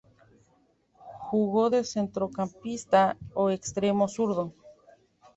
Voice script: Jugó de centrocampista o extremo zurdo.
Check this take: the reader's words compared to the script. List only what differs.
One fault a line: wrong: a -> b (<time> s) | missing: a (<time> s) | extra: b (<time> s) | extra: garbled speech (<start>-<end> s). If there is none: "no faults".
no faults